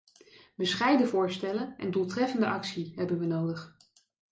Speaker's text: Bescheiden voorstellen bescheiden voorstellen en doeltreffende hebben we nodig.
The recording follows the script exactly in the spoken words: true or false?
false